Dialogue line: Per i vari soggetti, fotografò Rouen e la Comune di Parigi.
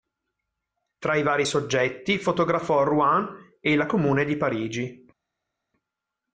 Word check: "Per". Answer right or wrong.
wrong